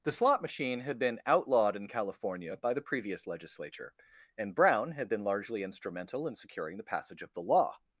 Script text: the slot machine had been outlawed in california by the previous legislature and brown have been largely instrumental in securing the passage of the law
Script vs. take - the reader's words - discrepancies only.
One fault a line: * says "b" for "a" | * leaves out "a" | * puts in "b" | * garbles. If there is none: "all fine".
* says "had" for "have"